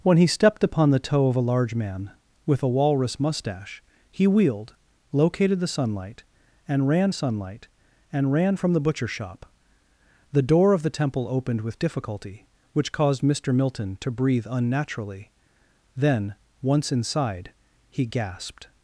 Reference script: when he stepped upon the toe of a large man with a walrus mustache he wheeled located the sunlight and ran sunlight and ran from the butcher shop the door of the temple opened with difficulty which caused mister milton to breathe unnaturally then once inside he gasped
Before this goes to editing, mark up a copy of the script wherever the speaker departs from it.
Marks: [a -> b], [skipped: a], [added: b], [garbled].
when he stepped upon the toe of a large man with a walrus mustache he wheeled located the sunlight and ran sunlight and ran from the butcher shop the door of the temple opened with difficulty which caused mister milton to breathe unnaturally then once inside he gasped